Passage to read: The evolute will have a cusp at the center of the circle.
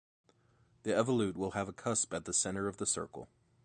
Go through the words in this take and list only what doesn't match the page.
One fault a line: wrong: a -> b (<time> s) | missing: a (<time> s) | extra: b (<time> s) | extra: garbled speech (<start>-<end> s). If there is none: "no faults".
no faults